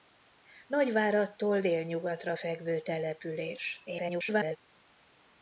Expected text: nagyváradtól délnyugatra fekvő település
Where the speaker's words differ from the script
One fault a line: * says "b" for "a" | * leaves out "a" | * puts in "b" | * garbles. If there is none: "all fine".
* garbles